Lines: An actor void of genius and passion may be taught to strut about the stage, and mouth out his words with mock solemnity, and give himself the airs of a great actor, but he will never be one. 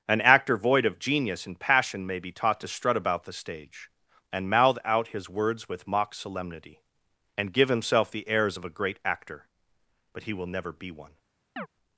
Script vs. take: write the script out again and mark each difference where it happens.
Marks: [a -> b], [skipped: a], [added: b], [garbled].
An actor void of genius and passion may be taught to strut about the stage, and mouth out his words with mock solemnity, and give himself the airs of a great actor, but he will never be one.